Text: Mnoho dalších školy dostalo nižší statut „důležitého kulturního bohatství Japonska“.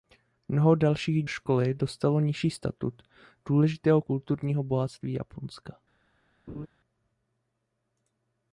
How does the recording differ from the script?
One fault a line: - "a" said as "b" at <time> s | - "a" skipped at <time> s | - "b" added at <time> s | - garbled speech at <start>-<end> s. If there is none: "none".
none